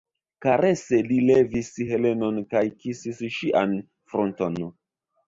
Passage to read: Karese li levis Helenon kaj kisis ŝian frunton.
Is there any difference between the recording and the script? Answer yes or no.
no